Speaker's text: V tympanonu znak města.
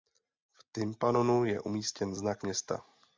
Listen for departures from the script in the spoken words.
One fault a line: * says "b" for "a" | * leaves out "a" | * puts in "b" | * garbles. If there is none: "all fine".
* puts in "je umístěn"